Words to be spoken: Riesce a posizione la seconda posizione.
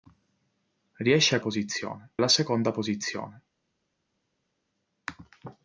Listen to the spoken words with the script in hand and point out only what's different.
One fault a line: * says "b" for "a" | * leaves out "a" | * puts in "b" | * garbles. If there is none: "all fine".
all fine